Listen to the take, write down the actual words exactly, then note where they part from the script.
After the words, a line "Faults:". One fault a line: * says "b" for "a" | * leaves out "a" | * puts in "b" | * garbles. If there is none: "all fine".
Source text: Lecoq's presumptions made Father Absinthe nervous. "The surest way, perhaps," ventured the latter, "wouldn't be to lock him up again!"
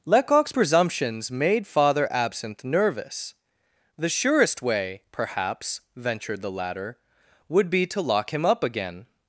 Lecoq's presumptions made Father Absinthe nervous. "The surest way, perhaps," ventured the latter, "would be to lock him up again!"
Faults:
* says "would" for "wouldn't"